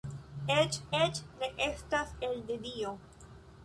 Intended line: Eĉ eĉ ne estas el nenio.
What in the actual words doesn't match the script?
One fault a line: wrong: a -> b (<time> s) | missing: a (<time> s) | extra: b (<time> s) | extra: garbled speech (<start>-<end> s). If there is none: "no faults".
no faults